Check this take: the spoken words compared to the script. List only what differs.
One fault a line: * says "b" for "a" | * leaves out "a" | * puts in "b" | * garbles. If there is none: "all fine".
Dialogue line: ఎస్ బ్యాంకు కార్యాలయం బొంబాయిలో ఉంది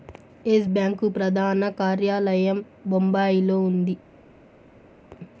* puts in "ప్రధాన"